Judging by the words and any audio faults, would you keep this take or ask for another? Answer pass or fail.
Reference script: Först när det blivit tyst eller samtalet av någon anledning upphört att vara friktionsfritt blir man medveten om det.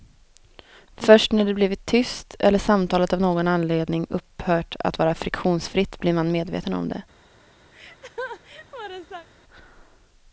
fail